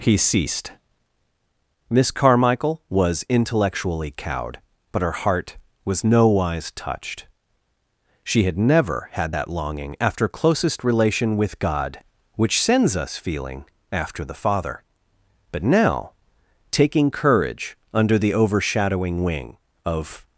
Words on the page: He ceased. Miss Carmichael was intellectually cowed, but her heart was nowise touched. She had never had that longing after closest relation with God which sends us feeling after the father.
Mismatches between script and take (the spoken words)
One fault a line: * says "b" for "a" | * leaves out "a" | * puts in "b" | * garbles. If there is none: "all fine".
* puts in "But now taking courage under the overshadowing wing of"